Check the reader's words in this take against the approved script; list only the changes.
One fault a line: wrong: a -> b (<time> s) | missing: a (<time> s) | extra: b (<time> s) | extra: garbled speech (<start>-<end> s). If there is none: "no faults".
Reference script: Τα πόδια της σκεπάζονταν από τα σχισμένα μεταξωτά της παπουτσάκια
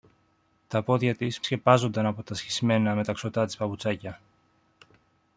no faults